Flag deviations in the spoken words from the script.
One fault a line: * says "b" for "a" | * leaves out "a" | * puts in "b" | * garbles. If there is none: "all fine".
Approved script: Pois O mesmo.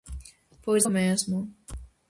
all fine